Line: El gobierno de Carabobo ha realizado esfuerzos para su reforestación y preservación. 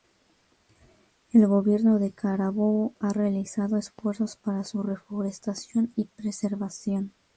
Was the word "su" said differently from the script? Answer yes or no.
no